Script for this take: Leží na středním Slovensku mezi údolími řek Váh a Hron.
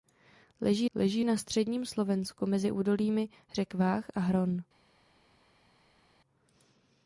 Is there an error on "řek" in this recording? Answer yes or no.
no